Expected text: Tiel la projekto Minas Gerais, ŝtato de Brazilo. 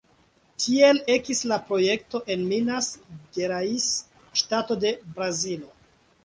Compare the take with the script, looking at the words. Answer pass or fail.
fail